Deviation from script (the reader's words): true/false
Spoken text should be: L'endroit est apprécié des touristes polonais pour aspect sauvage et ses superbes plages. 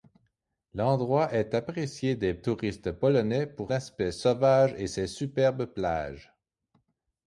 false